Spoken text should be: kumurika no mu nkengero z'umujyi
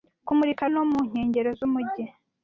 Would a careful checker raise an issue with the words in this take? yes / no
no